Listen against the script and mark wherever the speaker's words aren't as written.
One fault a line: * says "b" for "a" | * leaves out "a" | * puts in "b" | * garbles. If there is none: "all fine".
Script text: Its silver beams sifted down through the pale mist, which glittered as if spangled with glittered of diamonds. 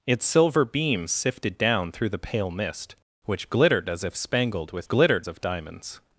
all fine